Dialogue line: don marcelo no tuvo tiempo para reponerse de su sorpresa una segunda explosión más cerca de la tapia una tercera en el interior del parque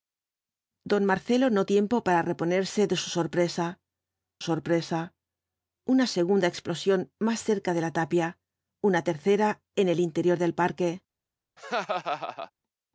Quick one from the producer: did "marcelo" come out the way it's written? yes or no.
yes